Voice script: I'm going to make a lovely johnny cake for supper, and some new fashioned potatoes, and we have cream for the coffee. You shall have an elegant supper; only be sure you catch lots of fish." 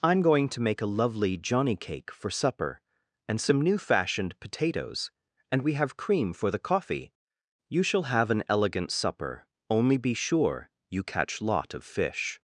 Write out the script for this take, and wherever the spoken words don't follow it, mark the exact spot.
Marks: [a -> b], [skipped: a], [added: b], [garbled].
I'm going to make a lovely johnny cake for supper, and some new fashioned potatoes, and we have cream for the coffee. You shall have an elegant supper; only be sure you catch [lots -> lot] of fish."